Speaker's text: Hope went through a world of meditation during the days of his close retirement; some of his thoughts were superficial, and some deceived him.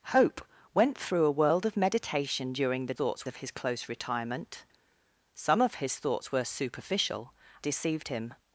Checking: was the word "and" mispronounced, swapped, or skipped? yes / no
yes